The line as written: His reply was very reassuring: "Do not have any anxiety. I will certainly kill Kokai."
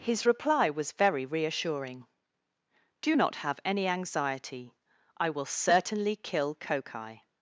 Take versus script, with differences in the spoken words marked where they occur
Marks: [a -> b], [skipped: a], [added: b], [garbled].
His reply was very reassuring: "Do not have any anxiety. I will certainly kill Kokai."